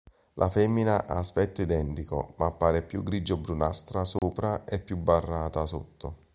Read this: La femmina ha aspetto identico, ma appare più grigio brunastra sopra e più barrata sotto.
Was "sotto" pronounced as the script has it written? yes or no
yes